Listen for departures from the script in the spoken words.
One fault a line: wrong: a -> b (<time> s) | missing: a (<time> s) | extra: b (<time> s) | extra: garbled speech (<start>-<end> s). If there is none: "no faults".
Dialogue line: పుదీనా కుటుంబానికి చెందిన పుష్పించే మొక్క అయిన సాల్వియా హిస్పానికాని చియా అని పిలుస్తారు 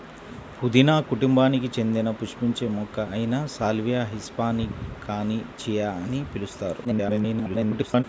extra: garbled speech (6.8-8.0 s)